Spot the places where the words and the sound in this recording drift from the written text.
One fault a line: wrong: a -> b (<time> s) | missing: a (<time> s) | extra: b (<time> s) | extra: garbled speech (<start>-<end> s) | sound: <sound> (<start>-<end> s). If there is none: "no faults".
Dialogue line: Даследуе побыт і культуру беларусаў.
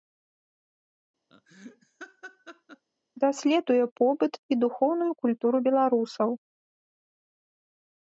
sound: laugh (1.3-2.9 s)
extra: духоўную (4.6 s)